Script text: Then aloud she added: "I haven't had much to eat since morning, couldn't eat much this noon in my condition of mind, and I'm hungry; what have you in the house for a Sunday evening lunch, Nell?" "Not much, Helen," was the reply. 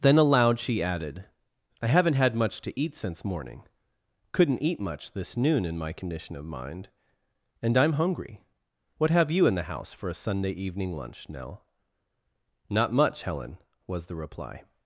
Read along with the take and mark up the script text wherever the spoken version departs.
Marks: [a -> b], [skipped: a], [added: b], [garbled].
Then aloud she added: "I haven't had much to eat since morning, couldn't eat much this noon in my condition of mind, and I'm hungry; what have you in the house for a Sunday evening lunch, Nell?" "Not much, Helen," was the reply.